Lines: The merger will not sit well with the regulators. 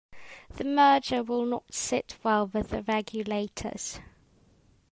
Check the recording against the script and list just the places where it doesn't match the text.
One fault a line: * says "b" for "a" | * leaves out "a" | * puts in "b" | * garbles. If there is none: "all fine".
all fine